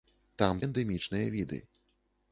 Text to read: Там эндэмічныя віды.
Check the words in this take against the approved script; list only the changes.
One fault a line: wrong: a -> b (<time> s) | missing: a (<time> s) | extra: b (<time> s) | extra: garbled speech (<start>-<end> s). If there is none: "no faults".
no faults